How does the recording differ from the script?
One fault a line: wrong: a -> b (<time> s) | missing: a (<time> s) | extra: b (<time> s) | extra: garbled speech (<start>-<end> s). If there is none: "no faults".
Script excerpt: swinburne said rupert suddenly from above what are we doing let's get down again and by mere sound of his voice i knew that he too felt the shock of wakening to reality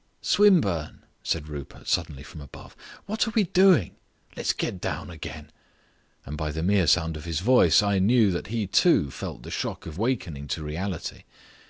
extra: the (6.5 s)